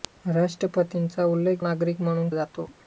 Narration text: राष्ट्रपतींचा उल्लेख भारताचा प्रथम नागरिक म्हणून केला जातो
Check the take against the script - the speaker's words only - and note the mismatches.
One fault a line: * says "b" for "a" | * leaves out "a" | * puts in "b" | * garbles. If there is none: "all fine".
* leaves out "भारताचा प्रथम"
* leaves out "केला"